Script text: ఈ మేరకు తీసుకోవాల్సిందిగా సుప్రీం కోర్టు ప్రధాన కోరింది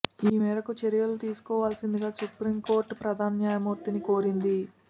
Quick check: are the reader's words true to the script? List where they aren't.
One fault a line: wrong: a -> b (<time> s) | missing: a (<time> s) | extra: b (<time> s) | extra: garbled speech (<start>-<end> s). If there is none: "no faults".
extra: చర్యలు (0.8 s)
extra: న్యాయమూర్తిని (3.4 s)